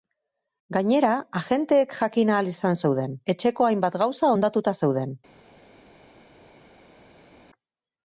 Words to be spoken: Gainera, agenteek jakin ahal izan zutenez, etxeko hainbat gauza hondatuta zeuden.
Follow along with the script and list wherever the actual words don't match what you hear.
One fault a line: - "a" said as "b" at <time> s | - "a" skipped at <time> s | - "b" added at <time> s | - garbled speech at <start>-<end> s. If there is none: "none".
- "zutenez" said as "zeuden" at 2.8 s